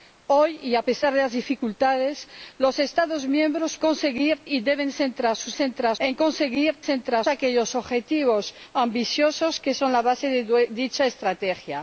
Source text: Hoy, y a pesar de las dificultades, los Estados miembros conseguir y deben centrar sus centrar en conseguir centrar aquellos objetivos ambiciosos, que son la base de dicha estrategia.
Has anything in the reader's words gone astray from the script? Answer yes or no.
no